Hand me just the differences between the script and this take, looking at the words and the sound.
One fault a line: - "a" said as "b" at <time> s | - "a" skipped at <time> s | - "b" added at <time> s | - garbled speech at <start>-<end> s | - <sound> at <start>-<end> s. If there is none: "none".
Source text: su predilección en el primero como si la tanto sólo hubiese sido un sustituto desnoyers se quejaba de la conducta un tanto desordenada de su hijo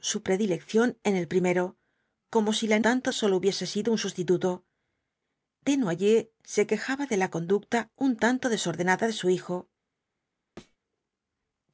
- thud at 10.6-10.8 s